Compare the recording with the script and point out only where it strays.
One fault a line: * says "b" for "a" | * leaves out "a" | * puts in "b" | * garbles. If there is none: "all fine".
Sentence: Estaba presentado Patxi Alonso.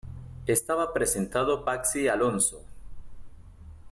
all fine